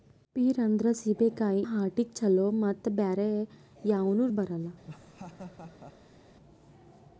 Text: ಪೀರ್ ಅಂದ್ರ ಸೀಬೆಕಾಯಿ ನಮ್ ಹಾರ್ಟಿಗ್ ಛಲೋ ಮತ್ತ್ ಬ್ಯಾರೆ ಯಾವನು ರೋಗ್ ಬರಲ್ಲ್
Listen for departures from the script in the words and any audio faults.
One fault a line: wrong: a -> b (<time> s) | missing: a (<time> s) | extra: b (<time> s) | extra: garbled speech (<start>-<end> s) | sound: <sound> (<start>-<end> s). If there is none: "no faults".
missing: ನಮ್ (1.7 s)
missing: ರೋಗ್ (4.3 s)
sound: laugh (4.8-6.2 s)